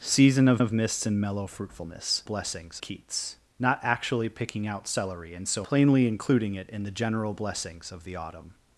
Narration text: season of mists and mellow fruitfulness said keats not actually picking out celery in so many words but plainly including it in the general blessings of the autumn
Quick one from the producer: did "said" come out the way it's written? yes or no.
no